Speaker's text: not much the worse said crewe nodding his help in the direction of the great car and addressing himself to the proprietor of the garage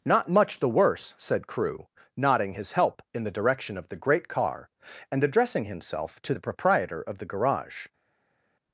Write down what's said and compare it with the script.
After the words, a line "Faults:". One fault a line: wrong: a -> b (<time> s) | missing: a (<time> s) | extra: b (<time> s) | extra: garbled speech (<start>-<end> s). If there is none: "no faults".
not much the worse said crewe nodding his help in the direction of the great car and addressing himself to the proprietor of the garage
Faults:
no faults